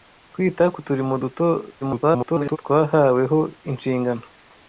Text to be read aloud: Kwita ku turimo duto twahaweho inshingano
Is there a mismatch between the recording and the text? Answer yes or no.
yes